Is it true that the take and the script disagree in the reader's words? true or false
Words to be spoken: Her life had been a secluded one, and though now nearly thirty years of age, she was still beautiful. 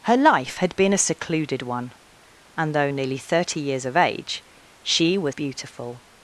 true